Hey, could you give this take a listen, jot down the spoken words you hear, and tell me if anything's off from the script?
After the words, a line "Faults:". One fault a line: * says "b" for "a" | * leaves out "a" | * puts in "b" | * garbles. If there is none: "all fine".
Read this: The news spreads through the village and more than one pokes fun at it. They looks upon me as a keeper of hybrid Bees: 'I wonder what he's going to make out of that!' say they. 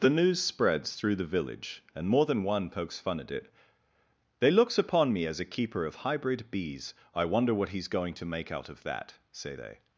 The news spreads through the village and more than one pokes fun at it. They looks upon me as a keeper of hybrid Bees: 'I wonder what he's going to make out of that!' say they.
Faults:
all fine